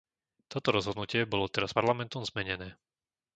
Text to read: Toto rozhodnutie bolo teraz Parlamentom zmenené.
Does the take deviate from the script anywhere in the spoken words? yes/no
no